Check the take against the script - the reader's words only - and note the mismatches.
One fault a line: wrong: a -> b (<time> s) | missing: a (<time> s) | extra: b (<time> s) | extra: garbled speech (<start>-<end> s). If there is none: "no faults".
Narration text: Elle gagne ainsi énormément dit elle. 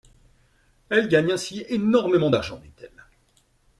extra: d'argent (2.3 s)